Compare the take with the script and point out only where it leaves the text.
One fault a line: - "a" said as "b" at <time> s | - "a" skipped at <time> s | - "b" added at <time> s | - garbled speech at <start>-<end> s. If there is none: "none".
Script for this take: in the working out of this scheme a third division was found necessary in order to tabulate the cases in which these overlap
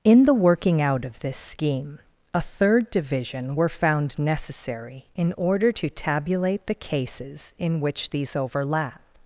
- "was" said as "were" at 3.5 s